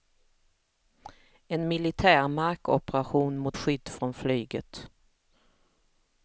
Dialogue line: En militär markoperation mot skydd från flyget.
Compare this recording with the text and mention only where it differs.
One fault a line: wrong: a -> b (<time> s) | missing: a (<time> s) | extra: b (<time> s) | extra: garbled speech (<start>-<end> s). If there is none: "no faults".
no faults